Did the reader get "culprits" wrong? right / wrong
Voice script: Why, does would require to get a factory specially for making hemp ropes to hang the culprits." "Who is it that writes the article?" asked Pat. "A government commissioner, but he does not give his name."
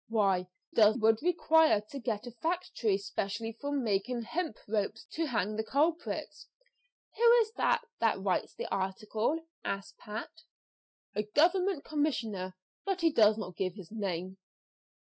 right